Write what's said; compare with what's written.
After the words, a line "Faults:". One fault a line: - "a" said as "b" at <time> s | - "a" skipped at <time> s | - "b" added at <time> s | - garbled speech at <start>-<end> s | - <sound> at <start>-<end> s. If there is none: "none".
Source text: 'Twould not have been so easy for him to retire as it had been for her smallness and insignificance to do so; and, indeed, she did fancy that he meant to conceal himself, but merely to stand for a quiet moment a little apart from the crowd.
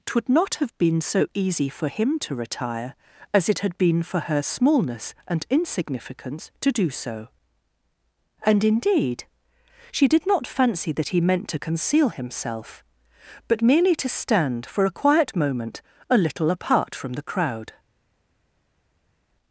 'Twould not have been so easy for him to retire as it had been for her smallness and insignificance to do so; and, indeed, she did not fancy that he meant to conceal himself, but merely to stand for a quiet moment a little apart from the crowd.
Faults:
- "not" added at 10.3 s